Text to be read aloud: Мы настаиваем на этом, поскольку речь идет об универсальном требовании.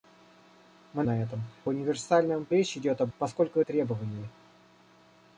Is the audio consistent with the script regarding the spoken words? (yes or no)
no